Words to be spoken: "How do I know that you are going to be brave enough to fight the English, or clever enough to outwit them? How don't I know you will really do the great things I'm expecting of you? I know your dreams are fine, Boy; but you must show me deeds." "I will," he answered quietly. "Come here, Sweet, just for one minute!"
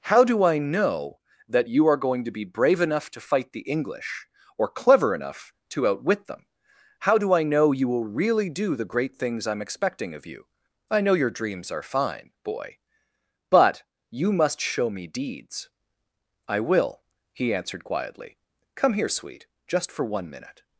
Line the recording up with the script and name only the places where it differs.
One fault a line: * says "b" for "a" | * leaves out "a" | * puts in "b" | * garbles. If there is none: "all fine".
* says "do" for "don't"